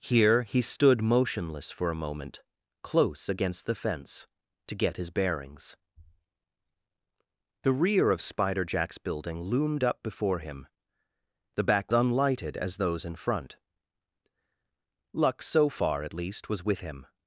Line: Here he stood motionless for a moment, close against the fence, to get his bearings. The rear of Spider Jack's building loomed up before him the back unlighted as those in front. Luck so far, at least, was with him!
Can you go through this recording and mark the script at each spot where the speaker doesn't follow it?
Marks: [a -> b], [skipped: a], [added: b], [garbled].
Here he stood motionless for a moment, close against the fence, to get his bearings. The rear of Spider Jack's building loomed up before him the back unlighted as those in front. Luck so far, at least, was with him!